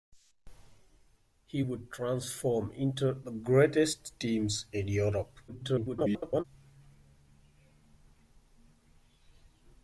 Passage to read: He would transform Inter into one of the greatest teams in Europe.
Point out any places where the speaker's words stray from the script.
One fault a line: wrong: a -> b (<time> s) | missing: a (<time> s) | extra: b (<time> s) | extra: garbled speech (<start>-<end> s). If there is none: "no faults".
missing: into one of (3.2 s)
extra: garbled speech (5.5-6.4 s)